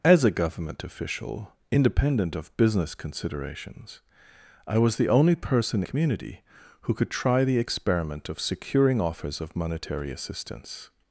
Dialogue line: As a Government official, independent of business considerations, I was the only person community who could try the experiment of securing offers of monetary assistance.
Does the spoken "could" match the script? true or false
true